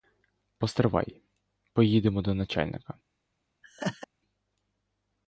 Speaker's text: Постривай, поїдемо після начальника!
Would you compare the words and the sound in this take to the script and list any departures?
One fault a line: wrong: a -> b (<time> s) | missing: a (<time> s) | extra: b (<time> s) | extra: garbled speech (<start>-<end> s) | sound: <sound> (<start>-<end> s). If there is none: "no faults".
wrong: після -> до (2.2 s)
sound: laugh (3.6-4.1 s)